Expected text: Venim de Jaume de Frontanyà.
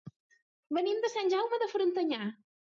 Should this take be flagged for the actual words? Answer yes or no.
yes